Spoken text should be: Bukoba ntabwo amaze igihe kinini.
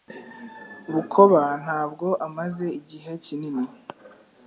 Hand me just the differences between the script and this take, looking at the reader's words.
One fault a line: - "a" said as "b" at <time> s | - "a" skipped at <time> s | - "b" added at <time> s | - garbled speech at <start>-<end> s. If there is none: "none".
none